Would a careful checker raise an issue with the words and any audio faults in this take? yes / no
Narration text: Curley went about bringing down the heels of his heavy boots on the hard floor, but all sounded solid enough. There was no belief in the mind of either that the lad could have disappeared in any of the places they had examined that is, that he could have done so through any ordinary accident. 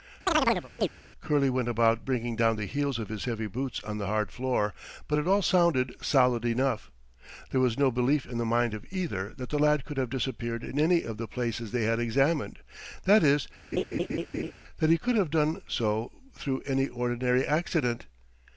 yes